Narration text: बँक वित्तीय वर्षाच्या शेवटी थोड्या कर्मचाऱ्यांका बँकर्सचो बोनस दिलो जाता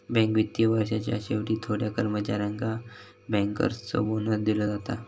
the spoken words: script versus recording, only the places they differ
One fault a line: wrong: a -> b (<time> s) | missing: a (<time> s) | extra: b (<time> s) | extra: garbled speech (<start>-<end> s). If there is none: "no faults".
no faults